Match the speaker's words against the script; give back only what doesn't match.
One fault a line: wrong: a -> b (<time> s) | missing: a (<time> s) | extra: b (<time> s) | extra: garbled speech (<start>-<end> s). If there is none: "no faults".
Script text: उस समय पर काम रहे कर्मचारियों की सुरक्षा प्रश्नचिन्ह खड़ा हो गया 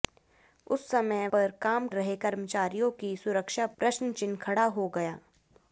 no faults